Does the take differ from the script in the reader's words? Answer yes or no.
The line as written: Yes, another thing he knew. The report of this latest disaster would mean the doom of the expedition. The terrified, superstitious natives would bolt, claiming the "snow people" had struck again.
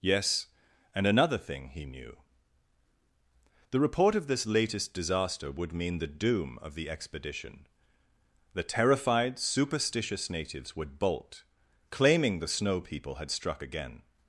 yes